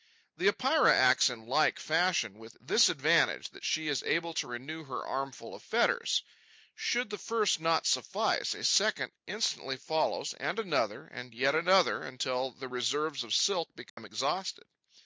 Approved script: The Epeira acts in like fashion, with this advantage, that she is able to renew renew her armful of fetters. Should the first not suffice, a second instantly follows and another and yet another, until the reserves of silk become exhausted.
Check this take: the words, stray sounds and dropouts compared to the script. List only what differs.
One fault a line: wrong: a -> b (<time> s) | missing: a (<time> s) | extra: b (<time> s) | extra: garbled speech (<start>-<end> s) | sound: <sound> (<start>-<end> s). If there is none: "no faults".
missing: renew (4.8 s)
sound: dropout (13.9-14.0 s)